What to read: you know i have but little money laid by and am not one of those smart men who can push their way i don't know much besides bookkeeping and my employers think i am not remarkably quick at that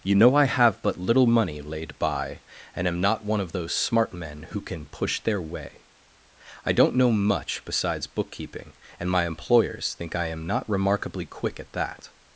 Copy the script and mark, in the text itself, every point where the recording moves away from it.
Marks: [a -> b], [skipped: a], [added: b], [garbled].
you know i have but little money laid by and am not one of those smart men who can push their way i don't know much besides bookkeeping and my employers think i am not remarkably quick at that